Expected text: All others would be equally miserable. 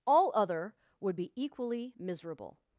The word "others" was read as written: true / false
false